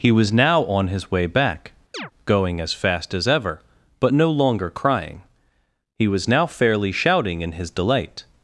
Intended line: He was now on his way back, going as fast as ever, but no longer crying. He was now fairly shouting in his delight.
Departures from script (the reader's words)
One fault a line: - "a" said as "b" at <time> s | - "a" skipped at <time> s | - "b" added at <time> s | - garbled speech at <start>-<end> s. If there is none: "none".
none